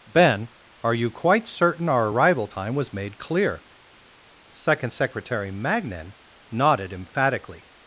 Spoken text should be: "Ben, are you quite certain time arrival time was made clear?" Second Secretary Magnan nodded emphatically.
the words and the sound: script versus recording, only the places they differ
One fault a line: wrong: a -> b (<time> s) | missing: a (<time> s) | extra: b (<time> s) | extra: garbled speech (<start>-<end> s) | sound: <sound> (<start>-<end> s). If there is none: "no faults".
wrong: time -> our (1.9 s)